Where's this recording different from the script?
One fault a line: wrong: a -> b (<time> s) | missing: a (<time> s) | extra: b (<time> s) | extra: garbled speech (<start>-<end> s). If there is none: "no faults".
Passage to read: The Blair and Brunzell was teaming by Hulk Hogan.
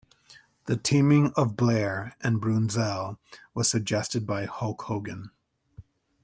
extra: teaming of (0.8 s)
wrong: teaming -> suggested (3.7 s)